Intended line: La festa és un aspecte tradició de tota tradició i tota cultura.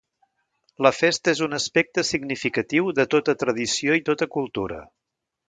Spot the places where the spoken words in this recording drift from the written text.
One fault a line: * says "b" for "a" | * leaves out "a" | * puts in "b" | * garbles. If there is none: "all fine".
* says "significatiu" for "tradició"